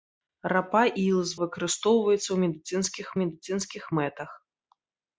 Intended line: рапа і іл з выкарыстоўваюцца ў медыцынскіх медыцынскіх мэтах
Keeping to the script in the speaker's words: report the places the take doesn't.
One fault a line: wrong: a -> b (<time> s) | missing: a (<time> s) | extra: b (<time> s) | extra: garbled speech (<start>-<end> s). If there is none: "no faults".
no faults